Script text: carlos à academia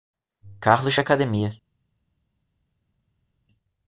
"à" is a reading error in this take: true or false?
false